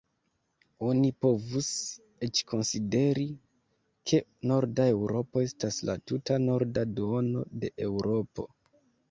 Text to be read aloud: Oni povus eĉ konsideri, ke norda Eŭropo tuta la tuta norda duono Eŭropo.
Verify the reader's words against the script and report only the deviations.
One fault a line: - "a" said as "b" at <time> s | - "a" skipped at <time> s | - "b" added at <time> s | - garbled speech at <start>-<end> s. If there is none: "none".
- "tuta" said as "estas" at 5.5 s
- "de" added at 7.6 s